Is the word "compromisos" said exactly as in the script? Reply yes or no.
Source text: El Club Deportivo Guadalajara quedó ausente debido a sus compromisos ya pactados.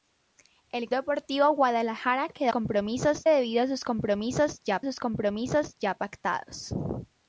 yes